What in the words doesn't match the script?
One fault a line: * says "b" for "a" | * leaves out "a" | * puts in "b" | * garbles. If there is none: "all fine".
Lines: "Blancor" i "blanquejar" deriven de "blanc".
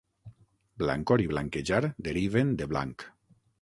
all fine